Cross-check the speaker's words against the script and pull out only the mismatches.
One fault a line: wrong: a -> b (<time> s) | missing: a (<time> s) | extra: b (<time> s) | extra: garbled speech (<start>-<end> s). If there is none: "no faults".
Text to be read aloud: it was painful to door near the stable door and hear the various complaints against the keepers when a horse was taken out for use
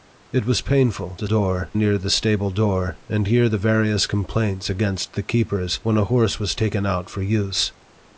no faults